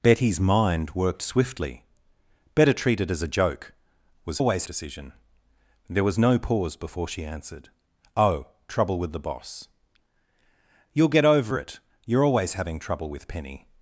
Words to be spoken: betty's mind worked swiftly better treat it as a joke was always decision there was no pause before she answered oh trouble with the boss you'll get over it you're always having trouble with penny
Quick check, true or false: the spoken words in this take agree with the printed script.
true